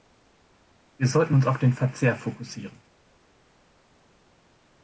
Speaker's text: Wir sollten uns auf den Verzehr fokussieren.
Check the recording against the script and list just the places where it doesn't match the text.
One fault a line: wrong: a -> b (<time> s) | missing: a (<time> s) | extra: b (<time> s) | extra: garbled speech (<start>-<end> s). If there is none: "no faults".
no faults